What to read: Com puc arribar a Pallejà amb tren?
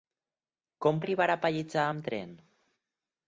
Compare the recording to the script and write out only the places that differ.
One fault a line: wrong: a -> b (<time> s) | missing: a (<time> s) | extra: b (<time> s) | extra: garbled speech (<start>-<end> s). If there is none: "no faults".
missing: puc (1.0 s)